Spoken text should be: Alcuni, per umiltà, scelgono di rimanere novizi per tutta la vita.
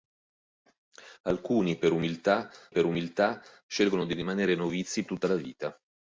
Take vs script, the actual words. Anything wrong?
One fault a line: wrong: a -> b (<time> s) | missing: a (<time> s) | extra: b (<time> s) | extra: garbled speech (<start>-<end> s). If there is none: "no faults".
extra: per umiltà (2.7 s)
missing: per (5.1 s)